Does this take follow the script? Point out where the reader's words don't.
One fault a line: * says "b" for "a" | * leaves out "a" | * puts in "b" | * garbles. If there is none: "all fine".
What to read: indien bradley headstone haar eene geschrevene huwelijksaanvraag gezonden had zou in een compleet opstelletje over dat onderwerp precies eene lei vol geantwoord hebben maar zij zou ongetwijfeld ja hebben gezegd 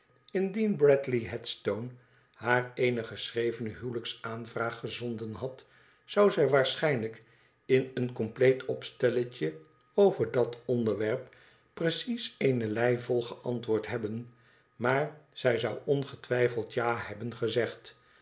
* puts in "zij waarschijnlijk"